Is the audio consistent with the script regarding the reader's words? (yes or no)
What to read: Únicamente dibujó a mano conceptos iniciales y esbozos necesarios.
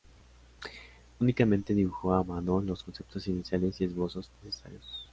no